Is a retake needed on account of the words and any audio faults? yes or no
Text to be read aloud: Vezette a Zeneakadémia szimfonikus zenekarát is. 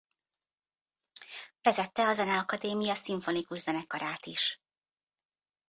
no